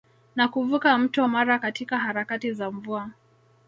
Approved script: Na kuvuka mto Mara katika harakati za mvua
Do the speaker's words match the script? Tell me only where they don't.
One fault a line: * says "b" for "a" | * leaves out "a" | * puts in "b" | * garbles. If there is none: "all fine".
all fine